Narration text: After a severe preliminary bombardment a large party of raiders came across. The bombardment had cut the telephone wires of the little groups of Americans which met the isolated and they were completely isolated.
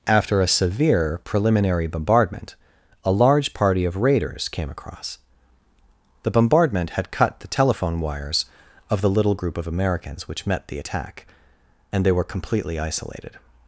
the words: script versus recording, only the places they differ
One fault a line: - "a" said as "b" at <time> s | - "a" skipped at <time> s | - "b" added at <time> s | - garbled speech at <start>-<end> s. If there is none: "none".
- "groups" said as "group" at 9.3 s
- "isolated" said as "attack" at 10.8 s